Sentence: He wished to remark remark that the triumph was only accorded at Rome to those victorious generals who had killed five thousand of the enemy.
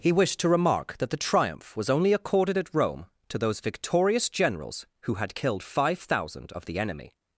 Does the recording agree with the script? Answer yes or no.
no